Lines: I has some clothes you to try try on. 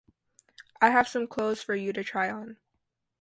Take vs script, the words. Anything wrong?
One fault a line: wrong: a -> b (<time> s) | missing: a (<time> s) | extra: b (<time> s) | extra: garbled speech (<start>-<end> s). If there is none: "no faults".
wrong: has -> have (0.9 s)
extra: for (1.6 s)
missing: try (2.3 s)